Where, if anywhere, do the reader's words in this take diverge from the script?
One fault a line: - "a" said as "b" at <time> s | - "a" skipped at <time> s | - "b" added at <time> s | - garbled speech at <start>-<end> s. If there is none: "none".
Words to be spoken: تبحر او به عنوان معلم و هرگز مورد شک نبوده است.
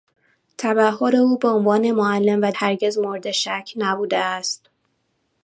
none